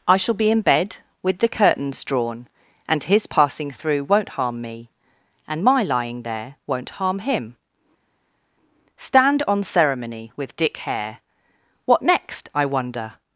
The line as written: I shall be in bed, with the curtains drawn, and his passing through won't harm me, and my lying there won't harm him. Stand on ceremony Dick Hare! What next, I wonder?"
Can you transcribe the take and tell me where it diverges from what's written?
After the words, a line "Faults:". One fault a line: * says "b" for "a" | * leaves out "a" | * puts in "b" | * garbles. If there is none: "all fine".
I shall be in bed, with the curtains drawn, and his passing through won't harm me, and my lying there won't harm him. Stand on ceremony with Dick Hare! What next, I wonder?"
Faults:
* puts in "with"